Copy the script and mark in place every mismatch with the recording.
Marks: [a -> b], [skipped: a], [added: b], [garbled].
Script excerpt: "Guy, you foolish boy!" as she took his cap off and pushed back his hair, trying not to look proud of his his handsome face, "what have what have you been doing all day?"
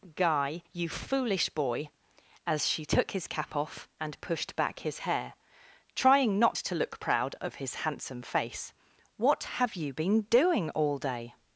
"Guy, you foolish boy!" as she took his cap off and pushed back his hair, trying not to look proud of his [skipped: his] handsome face, "what have [skipped: what have] you been doing all day?"